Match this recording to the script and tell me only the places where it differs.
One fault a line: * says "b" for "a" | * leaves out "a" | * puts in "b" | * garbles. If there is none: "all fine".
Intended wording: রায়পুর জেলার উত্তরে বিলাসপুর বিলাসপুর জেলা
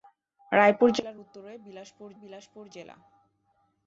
all fine